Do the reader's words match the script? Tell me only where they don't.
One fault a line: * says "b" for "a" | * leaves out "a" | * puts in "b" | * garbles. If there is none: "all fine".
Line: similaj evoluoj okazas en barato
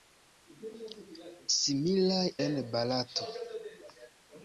* leaves out "evoluoj okazas"